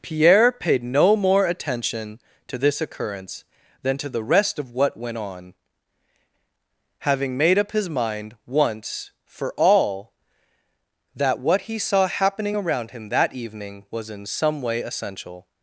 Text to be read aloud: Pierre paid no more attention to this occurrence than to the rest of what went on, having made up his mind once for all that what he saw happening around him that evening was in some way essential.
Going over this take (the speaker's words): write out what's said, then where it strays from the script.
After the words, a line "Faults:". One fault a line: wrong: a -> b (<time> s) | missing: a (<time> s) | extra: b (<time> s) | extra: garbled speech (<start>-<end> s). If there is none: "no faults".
Pierre paid no more attention to this occurrence than to the rest of what went on, having made up his mind once for all that what he saw happening around him that evening was in some way essential.
Faults:
no faults